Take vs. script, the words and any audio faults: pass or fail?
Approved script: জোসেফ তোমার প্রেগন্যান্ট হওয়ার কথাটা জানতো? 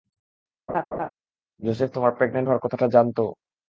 fail